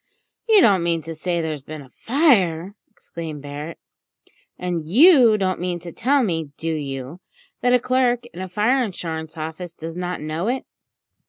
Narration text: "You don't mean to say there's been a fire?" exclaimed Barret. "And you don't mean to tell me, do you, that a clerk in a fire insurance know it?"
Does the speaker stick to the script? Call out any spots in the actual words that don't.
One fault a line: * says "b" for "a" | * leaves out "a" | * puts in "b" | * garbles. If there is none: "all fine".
* puts in "office does not"